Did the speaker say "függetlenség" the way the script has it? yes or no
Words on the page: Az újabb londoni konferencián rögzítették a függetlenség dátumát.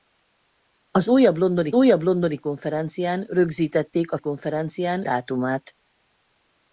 no